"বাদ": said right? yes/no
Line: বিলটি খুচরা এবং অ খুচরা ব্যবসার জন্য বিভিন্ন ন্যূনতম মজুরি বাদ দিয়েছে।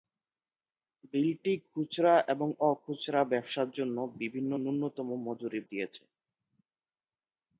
no